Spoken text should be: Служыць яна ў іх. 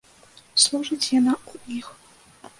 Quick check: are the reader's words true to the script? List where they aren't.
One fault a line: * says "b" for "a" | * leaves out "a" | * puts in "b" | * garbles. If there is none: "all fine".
all fine